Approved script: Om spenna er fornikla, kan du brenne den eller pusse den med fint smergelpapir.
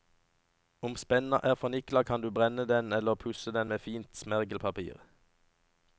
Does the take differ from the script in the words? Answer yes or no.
no